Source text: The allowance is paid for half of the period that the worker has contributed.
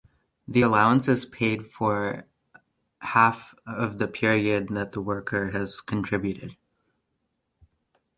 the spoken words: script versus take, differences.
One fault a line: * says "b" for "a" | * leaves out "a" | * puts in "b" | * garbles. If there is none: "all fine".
all fine